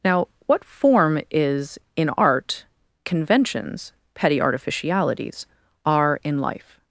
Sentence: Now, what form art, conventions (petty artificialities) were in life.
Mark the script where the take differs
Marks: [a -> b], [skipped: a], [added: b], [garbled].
Now, what form [added: is in] art, conventions (petty artificialities) [were -> are] in life.